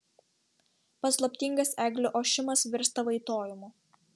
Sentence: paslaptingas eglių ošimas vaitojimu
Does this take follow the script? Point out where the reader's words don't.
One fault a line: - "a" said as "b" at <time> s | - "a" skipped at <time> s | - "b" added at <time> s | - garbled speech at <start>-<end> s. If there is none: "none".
- "virsta" added at 2.8 s